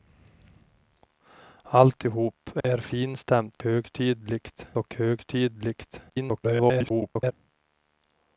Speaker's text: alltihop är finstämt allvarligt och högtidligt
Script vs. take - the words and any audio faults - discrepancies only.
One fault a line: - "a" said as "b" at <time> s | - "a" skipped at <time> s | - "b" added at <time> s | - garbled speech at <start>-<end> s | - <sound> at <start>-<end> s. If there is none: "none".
- dropout at 2.6-2.6 s
- "allvarligt" said as "högtidligt" at 3.6 s
- garbled speech at 6.1-7.3 s